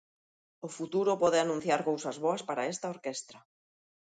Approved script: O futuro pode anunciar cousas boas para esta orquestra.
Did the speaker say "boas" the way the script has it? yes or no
yes